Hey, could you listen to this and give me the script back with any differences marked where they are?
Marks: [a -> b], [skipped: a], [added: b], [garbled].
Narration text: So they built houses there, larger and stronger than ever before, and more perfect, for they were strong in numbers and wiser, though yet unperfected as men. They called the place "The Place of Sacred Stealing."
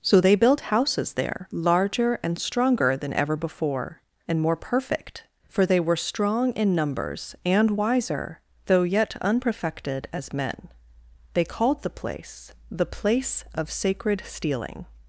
So they built houses there, larger and stronger than ever before, and more perfect, for they were strong in numbers and wiser, though yet unperfected as men. They called the place "The Place of Sacred Stealing."